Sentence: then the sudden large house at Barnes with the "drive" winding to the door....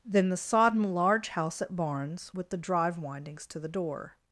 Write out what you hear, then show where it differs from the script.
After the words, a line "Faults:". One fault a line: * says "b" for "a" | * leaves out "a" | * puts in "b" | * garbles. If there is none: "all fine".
then the sodden large house at Barnes with the "drive" windings to the door....
Faults:
* says "sodden" for "sudden"
* says "windings" for "winding"